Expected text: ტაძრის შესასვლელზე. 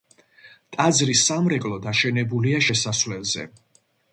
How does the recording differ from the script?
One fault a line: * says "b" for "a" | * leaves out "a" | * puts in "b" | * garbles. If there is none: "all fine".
* puts in "სამრეკლო დაშენებულია"